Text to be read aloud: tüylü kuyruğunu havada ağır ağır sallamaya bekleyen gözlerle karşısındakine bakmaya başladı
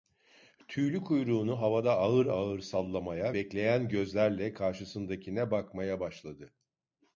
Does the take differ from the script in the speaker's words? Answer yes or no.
no